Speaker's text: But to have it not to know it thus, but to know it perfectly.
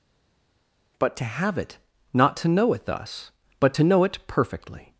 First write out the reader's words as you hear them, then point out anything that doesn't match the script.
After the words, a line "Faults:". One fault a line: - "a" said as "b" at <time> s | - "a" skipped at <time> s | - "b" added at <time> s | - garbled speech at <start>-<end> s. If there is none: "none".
But to have it not to know it thus, but to know it perfectly.
Faults:
none